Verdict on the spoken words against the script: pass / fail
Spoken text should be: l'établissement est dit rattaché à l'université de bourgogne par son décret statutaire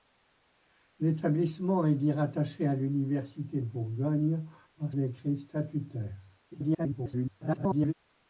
fail